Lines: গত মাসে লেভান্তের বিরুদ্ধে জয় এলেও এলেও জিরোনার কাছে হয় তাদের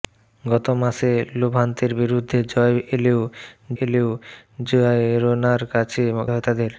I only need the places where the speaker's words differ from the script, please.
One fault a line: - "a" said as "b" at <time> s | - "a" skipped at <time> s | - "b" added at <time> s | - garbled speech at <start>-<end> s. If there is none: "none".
none